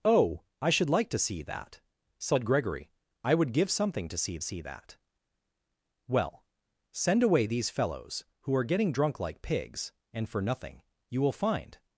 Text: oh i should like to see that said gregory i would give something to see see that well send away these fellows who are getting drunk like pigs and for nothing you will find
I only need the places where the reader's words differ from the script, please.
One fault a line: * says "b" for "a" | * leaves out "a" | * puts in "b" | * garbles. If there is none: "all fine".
all fine